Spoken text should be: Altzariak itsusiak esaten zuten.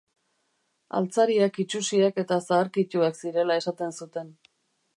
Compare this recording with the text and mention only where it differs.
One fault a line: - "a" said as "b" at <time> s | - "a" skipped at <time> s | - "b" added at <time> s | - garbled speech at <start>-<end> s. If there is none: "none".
- "eta zaharkituak zirela" added at 2.2 s